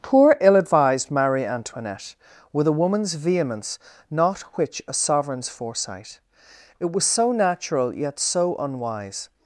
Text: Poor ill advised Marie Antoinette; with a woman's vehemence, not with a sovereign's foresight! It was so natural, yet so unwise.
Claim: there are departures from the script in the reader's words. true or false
true